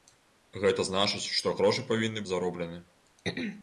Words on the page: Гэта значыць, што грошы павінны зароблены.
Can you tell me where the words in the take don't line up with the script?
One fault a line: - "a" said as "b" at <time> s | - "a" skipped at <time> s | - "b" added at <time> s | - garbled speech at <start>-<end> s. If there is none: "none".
none